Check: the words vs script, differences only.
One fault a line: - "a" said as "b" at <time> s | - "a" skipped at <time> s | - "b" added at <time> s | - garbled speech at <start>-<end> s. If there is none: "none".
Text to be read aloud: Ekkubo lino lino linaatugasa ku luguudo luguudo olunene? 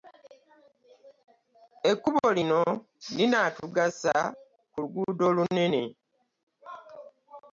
- "lino" skipped at 2.6 s
- "luguudo" skipped at 5.2 s